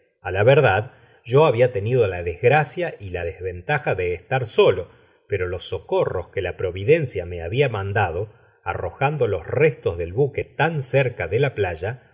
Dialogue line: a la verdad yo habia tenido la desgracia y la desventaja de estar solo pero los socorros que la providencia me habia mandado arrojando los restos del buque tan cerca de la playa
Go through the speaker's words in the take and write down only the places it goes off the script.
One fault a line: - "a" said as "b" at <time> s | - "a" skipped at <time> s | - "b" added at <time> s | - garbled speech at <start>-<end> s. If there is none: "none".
none